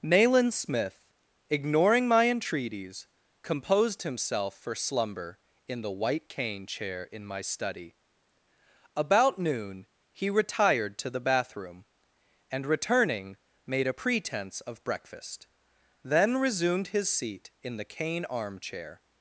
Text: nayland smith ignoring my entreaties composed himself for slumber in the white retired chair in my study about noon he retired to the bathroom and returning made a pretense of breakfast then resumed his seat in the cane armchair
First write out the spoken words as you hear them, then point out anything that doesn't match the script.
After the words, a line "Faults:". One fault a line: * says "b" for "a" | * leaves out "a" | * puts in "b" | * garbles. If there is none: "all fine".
nayland smith ignoring my entreaties composed himself for slumber in the white cane chair in my study about noon he retired to the bathroom and returning made a pretense of breakfast then resumed his seat in the cane armchair
Faults:
* says "cane" for "retired"